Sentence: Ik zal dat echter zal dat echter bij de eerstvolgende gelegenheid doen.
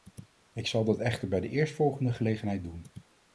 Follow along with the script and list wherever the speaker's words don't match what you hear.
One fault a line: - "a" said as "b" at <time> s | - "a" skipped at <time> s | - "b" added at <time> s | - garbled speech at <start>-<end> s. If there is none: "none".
- "zal dat echter" skipped at 1.3 s